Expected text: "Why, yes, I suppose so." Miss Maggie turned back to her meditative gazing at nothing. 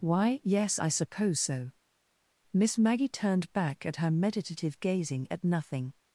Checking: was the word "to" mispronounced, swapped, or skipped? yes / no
yes